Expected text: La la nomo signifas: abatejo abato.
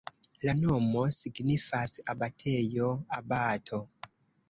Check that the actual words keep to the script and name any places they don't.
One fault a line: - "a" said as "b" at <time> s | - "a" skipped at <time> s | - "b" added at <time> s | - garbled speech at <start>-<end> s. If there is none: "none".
- "la" skipped at 0.6 s